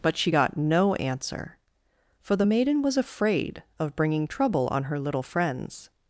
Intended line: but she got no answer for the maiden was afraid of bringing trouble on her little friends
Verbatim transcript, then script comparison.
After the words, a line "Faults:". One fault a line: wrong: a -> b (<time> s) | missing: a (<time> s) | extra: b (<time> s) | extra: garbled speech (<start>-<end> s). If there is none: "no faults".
but she got no answer for the maiden was afraid of bringing trouble on her little friends
Faults:
no faults